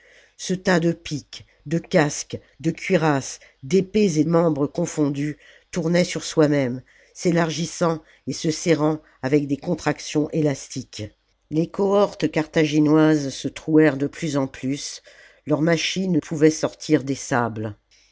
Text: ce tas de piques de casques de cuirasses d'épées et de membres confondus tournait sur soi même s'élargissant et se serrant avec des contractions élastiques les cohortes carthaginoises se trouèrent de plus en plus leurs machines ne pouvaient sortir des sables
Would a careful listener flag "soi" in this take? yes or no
no